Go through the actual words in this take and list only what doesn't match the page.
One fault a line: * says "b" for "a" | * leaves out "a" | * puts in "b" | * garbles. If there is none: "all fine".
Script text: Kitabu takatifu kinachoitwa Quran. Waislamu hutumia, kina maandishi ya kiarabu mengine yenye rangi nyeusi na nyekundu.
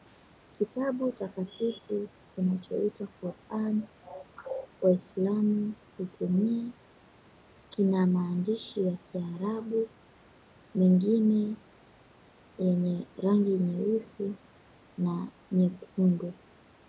all fine